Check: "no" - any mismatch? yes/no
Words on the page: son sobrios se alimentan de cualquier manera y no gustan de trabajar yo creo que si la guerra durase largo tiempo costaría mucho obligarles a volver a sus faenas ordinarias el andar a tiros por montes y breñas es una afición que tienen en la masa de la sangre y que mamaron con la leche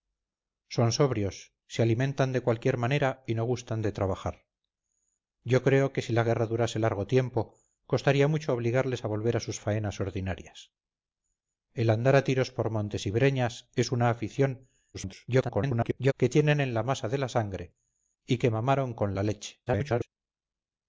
no